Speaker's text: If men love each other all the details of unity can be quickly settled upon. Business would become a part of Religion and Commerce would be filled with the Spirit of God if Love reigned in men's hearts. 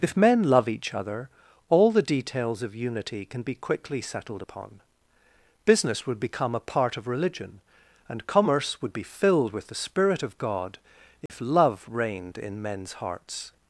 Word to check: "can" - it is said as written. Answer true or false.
true